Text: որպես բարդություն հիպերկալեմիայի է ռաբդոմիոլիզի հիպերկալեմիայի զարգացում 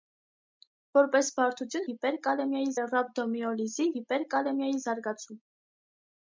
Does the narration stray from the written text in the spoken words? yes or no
no